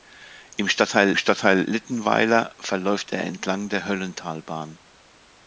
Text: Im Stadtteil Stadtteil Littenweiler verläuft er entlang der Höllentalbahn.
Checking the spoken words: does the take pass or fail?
pass